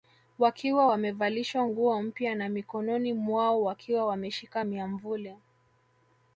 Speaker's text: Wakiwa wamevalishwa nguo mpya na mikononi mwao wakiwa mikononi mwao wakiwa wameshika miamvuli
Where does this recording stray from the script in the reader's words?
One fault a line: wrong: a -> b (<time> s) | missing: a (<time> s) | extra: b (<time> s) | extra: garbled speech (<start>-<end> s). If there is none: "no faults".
missing: mikononi mwao wakiwa (4.1 s)